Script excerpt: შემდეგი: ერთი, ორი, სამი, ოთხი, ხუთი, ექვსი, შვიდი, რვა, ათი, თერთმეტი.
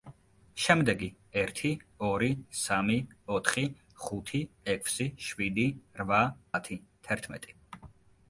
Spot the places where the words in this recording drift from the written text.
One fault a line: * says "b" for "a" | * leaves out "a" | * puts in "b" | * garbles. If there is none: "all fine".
all fine